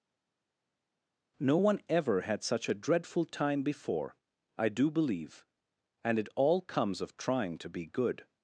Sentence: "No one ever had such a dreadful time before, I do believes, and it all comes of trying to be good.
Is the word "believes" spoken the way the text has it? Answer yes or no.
no